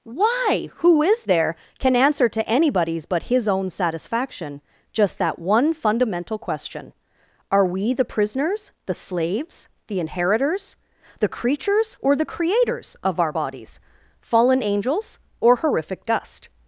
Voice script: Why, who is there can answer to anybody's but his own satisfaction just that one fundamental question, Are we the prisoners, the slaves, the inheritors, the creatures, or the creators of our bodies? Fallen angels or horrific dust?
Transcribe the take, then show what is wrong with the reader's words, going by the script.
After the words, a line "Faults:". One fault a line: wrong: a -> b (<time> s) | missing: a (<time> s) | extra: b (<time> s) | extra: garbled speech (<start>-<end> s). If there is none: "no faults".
Why, who is there can answer to anybody's but his own satisfaction just that one fundamental question, Are we the prisoners, the slaves, the inheritors, the creatures, or the creators of our bodies? Fallen angels or horrific dust?
Faults:
no faults